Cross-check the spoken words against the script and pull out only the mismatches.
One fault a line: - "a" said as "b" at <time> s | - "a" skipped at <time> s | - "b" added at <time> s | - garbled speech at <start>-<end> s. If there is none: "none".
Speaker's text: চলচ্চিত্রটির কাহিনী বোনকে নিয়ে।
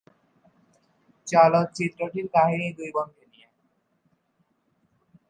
- "দুই" added at 2.8 s